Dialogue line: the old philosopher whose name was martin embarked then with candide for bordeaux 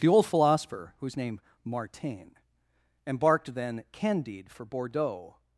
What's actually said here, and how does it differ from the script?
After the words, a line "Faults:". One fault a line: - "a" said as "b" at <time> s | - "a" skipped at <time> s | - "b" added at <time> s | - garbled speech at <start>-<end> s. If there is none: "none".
the old philosopher whose name martin embarked then candide for bordeaux
Faults:
- "was" skipped at 1.4 s
- "with" skipped at 3.8 s